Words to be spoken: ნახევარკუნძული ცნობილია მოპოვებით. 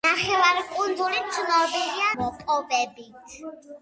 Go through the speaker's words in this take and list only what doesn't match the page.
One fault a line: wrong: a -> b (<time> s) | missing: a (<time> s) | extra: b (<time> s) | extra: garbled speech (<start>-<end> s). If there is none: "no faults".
no faults